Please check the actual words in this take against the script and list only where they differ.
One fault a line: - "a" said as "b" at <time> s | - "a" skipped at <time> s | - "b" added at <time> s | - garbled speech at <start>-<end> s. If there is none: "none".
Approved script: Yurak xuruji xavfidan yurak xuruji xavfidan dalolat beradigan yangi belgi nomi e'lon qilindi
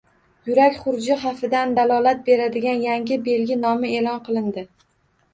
- "yurak xuruji xavfidan" skipped at 1.8 s